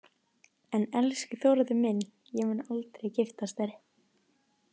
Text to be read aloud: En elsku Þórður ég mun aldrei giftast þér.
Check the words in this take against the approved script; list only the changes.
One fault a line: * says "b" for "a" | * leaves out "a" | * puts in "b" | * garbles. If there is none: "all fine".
* puts in "minn"